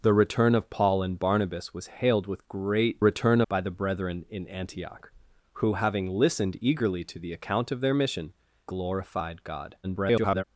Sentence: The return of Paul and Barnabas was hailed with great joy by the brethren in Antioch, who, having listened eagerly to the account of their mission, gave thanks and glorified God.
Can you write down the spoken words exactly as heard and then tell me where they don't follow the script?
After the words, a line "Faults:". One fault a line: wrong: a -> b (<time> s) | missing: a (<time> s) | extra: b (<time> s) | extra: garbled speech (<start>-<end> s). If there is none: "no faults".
The return of Paul and Barnabas was hailed with great return by the brethren in Antioch, who, having listened eagerly to the account of their mission, glorified God. [garbled]
Faults:
wrong: joy -> return (3.0 s)
missing: gave thanks and (8.3 s)
extra: garbled speech (9.8-10.4 s)